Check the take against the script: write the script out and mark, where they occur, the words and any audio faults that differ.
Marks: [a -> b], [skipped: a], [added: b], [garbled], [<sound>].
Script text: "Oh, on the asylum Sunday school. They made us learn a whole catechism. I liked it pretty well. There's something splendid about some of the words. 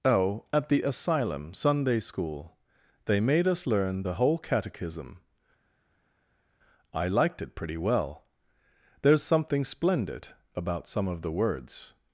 "Oh, [on -> at] the asylum Sunday school. They made us learn [a -> the] whole catechism. I liked it pretty well. There's something splendid about some of the words.